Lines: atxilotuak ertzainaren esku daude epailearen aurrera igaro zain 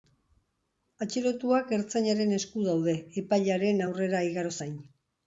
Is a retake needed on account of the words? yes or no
no